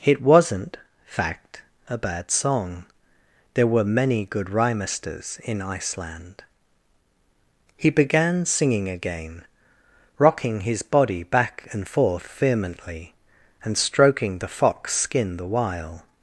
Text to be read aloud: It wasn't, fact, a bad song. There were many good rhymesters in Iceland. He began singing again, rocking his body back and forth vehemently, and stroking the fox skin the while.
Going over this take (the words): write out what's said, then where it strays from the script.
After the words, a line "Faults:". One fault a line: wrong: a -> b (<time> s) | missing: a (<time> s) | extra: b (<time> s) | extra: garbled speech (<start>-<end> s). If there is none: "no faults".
It wasn't, fact, a bad song. There were many good rhymesters in Iceland. He began singing again, rocking his body back and forth vehemently, and stroking the fox skin the while.
Faults:
no faults